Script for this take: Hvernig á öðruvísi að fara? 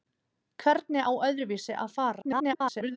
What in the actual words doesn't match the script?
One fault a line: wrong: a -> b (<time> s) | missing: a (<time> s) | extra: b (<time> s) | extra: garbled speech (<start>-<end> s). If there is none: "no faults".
extra: garbled speech (2.2-3.0 s)